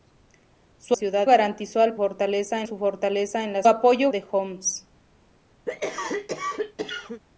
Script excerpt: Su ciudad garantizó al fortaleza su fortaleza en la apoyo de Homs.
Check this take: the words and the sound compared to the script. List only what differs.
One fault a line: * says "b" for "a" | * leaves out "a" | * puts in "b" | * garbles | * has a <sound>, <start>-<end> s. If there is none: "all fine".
* has a cough, 5.7-7.2 s